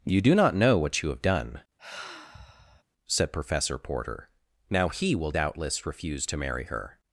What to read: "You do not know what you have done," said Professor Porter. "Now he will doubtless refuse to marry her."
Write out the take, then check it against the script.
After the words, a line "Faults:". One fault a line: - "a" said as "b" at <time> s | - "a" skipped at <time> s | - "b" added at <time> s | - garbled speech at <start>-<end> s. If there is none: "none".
"You do not know what you have done," said Professor Porter. "Now he will doubtless refuse to marry her."
Faults:
none